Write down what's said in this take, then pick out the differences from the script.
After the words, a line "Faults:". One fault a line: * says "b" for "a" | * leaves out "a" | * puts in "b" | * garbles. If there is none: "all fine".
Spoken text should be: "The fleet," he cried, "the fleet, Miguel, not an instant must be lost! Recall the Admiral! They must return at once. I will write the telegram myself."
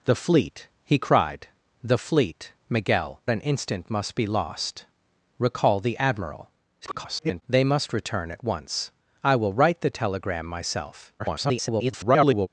"The fleet," he cried, "the fleet, Miguel, an instant must be lost! Recall the Admiral! [garbled] They must return at once. I will write the telegram myself." [garbled]
Faults:
* leaves out "not"
* garbles
* garbles